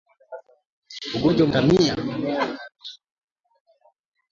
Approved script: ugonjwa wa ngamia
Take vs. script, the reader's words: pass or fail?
pass